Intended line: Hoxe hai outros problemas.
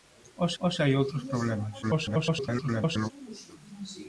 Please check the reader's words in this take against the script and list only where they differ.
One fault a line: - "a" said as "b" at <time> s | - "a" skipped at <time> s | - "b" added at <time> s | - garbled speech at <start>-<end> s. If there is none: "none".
- "hoxe" added at 0.6 s
- garbled speech at 1.8-3.1 s